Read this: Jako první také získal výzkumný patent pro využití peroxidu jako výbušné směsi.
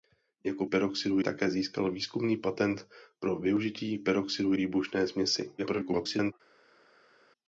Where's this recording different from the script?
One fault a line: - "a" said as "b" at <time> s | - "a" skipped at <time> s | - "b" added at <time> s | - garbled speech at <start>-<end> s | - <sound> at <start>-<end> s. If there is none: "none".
- "první" said as "peroxidu" at 0.6 s
- "jako" skipped at 4.5 s
- garbled speech at 5.6-6.3 s